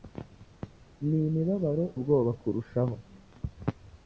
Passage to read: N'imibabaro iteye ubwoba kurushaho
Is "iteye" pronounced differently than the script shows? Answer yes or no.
yes